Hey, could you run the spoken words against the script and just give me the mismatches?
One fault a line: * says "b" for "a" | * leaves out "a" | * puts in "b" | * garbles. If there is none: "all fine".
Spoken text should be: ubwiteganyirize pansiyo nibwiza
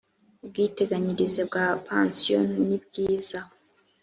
* puts in "bwa"